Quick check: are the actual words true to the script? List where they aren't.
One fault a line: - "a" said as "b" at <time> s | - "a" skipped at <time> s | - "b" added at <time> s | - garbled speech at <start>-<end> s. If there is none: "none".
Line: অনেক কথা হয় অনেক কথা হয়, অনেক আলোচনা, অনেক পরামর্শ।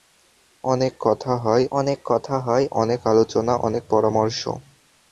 none